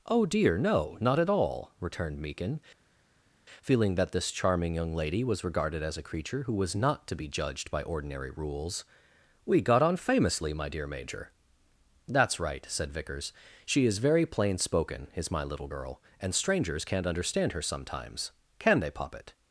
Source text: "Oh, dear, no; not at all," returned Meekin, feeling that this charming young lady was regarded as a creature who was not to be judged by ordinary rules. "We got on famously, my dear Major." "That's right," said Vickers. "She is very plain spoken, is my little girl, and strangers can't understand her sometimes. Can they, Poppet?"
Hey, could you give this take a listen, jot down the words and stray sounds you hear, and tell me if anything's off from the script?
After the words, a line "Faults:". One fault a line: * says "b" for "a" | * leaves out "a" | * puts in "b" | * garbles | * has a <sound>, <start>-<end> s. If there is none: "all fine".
"Oh, dear, no; not at all," returned Meekin, feeling that this charming young lady was regarded as a creature who was not to be judged by ordinary rules. "We got on famously, my dear Major." "That's right," said Vickers. "She is very plain spoken, is my little girl, and strangers can't understand her sometimes. Can they, Poppet?"
Faults:
all fine